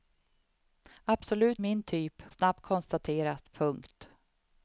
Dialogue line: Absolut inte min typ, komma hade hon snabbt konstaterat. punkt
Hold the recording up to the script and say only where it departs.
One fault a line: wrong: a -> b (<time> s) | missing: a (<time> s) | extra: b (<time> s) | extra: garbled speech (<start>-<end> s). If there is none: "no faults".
missing: inte (1.6 s)
missing: komma hade hon (2.2 s)